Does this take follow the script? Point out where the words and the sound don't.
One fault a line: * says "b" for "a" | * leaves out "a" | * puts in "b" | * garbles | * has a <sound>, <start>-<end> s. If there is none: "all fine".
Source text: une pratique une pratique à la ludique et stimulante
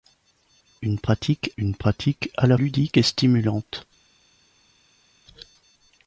all fine